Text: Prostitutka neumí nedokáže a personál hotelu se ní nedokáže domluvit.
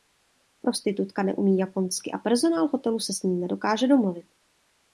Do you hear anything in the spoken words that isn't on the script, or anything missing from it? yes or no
yes